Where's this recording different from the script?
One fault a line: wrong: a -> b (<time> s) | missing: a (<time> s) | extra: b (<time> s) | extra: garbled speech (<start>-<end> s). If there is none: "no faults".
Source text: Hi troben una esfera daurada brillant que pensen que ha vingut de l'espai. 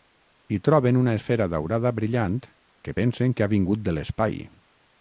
no faults